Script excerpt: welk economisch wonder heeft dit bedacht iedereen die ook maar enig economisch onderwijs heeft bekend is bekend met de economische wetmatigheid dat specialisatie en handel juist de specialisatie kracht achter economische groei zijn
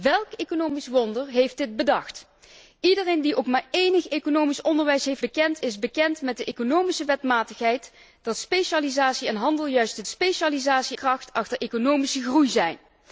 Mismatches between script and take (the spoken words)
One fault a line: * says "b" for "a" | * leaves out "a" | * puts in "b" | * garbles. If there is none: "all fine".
all fine